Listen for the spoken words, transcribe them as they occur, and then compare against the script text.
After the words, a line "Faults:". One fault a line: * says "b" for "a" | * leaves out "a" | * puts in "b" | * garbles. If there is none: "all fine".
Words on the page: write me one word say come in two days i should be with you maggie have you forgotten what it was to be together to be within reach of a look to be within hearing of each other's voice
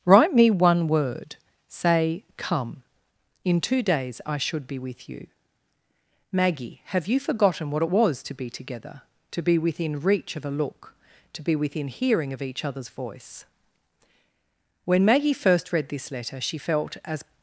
write me one word say come in two days i should be with you maggie have you forgotten what it was to be together to be within reach of a look to be within hearing of each other's voice when maggie first read this letter she felt as
Faults:
* puts in "when maggie first read this letter she felt as"